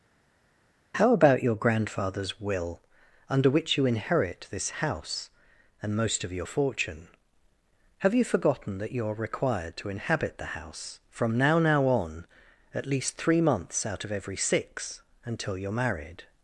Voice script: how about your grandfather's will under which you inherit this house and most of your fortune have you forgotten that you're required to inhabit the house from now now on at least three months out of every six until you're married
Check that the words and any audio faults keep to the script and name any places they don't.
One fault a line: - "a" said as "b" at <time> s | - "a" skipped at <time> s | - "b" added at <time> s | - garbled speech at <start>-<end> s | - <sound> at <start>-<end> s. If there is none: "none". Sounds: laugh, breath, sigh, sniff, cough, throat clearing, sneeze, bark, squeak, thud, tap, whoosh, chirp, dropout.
none